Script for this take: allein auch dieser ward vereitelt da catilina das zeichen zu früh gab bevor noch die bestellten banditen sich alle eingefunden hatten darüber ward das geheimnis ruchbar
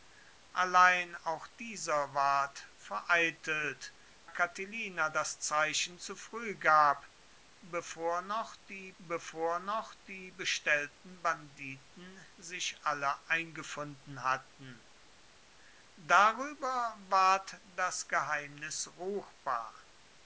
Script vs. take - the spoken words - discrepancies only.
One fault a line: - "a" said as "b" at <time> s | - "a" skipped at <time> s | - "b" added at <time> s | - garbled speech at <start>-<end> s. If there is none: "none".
- "da" skipped at 3.9 s
- "bevor noch die" added at 9.0 s